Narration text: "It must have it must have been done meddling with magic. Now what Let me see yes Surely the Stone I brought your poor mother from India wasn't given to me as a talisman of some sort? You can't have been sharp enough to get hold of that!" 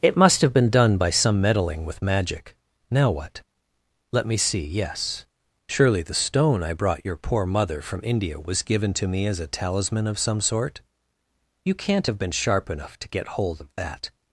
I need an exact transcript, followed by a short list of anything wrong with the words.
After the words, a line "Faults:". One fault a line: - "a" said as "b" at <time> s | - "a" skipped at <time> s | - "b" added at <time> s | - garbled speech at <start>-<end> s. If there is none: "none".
"It must have been done by some meddling with magic. Now what Let me see yes Surely the Stone I brought your poor mother from India was given to me as a talisman of some sort? You can't have been sharp enough to get hold of that!"
Faults:
- "it must have been done" said as "been done by some" at 0.5 s
- "wasn't" said as "was" at 8.4 s